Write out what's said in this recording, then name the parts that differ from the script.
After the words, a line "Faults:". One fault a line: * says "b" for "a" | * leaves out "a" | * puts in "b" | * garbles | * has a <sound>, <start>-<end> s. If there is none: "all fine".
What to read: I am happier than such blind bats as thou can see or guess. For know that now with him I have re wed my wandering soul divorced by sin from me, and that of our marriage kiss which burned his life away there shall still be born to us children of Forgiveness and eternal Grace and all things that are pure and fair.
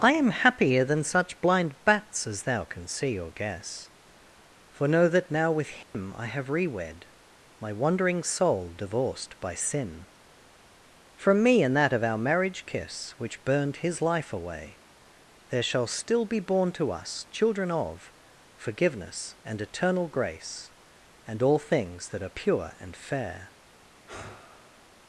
I am happier than such blind bats as thou can see or guess. For know that now with him I have re wed my wandering soul divorced by sin from me, and that of our marriage kiss which burned his life away there shall still be born to us children of Forgiveness and eternal Grace and all things that are pure and fair.
Faults:
* has a dropout, 5.8-5.9 s
* has a sigh, 24.1-24.9 s